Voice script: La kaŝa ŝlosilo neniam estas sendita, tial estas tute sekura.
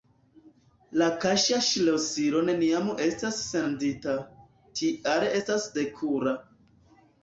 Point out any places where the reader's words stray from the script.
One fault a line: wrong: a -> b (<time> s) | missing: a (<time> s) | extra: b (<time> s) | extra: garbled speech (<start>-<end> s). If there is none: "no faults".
missing: tute (5.7 s)